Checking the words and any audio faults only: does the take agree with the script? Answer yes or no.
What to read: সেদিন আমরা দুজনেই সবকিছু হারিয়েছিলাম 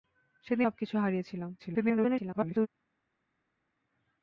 no